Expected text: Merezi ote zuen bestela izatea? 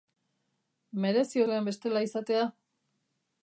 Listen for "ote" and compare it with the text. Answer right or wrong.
wrong